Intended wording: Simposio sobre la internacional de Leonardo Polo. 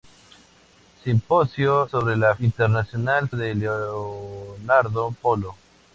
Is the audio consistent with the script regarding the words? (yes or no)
yes